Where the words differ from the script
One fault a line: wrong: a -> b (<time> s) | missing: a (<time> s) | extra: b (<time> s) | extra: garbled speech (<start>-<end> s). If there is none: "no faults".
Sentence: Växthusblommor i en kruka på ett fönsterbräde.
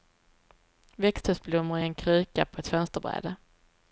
no faults